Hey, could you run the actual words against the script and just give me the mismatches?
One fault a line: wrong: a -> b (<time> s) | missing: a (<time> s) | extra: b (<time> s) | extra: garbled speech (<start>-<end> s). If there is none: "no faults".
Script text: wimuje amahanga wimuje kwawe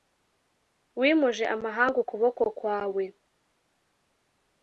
wrong: wimuje -> ukuboko (2.0 s)